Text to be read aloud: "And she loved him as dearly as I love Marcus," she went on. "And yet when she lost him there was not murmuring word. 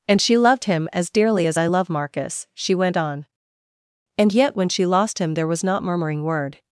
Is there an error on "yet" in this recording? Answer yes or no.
no